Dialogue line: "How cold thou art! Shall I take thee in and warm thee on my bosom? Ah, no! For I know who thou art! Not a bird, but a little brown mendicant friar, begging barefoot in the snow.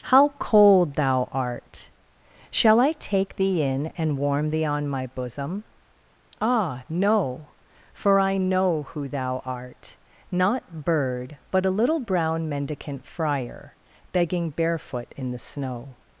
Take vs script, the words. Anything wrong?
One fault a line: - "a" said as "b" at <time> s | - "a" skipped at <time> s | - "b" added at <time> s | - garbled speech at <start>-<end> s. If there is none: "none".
- "a" skipped at 10.8 s